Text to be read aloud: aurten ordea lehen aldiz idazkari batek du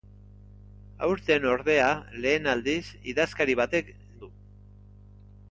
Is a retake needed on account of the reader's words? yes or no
no